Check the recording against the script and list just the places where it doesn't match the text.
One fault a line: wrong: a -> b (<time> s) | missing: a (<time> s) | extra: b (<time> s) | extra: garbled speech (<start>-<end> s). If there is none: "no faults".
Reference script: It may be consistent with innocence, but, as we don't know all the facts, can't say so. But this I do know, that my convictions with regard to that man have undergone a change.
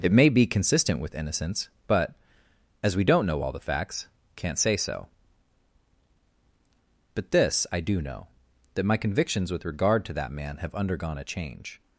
no faults